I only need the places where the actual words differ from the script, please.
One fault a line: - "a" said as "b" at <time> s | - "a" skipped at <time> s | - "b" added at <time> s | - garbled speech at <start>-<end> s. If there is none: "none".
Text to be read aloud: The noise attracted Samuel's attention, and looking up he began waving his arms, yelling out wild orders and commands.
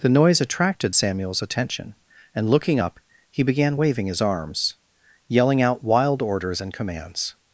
none